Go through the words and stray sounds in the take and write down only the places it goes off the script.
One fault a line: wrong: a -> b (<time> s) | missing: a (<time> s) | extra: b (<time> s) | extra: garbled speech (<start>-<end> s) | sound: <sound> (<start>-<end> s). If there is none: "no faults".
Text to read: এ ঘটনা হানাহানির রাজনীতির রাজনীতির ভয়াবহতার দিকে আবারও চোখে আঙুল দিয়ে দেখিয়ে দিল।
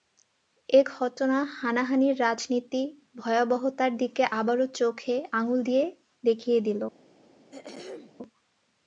missing: রাজনীতির (2.9 s)
sound: throat clearing (7.5-8.1 s)